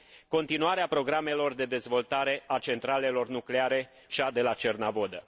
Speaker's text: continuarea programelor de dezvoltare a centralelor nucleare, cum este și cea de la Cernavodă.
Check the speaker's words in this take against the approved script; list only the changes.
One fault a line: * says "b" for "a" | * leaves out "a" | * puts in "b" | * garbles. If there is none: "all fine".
* leaves out "cum este și"